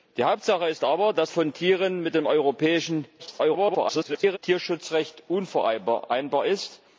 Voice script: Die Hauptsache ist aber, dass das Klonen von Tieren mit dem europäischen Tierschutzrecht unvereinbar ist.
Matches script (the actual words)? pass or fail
fail